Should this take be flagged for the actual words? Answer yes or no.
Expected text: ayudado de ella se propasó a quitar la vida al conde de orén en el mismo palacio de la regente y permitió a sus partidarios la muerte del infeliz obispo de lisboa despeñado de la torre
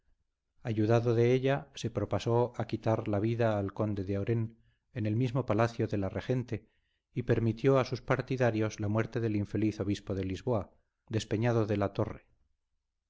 no